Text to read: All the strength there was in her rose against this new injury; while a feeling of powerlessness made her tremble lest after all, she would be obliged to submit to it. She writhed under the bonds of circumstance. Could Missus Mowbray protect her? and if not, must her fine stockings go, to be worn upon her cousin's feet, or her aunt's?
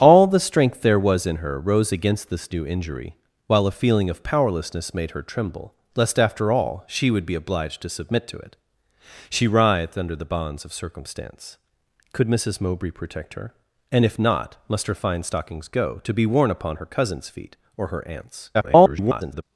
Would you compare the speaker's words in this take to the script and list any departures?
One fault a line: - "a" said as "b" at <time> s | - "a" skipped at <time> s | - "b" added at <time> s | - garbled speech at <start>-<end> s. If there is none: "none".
- garbled speech at 18.5-19.4 s